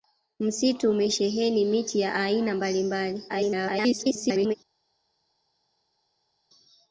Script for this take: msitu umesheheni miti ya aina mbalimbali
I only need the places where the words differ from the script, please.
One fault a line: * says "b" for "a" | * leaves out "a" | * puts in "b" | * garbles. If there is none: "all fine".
* garbles